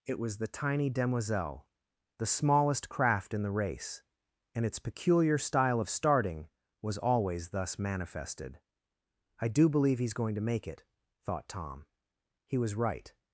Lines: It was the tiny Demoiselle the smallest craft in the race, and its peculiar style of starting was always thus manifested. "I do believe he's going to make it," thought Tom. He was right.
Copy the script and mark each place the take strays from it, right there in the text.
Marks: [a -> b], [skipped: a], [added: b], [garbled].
It was the tiny Demoiselle the smallest craft in the race, and its peculiar style of starting was always thus manifested. "I do believe he's going to make it," thought Tom. He was right.